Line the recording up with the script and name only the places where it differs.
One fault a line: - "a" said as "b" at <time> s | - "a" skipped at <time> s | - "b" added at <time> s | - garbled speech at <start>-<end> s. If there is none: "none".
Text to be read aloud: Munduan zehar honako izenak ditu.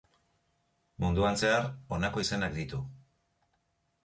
none